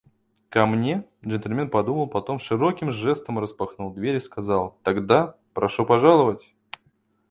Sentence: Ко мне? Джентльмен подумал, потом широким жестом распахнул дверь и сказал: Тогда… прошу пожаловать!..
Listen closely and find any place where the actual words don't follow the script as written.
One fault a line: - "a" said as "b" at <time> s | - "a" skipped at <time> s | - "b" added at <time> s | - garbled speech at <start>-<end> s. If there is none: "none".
none